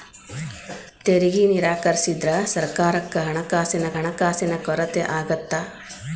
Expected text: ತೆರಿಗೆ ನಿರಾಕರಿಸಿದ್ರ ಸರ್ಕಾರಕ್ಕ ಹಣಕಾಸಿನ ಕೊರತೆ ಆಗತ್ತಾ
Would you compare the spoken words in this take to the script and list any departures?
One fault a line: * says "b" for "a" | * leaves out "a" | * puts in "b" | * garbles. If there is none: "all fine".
* puts in "ಹಣಕಾಸಿನ"